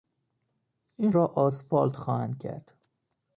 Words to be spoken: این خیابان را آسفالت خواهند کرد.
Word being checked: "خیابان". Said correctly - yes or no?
no